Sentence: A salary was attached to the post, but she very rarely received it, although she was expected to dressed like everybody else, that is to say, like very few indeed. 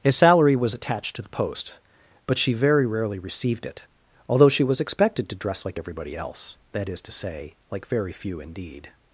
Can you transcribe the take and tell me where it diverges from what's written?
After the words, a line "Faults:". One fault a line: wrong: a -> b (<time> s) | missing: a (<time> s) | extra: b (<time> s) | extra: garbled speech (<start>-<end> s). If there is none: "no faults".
A salary was attached to the post, but she very rarely received it, although she was expected to dress like everybody else, that is to say, like very few indeed.
Faults:
wrong: dressed -> dress (5.3 s)